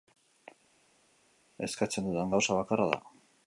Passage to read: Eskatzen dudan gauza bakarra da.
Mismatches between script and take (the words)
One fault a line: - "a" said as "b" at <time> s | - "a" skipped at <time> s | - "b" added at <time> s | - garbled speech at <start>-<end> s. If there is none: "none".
none